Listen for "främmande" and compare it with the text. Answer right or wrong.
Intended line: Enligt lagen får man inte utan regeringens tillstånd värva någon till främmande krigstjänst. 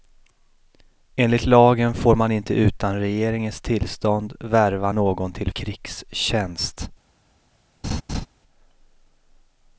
wrong